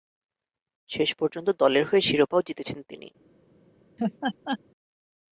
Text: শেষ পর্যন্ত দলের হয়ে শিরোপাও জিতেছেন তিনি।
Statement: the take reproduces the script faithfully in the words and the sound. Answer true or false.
false